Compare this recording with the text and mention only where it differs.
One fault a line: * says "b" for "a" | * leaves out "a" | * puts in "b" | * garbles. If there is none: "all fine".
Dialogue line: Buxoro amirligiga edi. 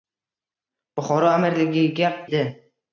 all fine